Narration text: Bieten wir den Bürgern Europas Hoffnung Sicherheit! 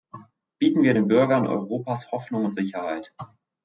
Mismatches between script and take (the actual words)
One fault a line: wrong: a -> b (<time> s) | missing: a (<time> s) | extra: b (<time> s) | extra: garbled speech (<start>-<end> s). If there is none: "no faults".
extra: und (2.4 s)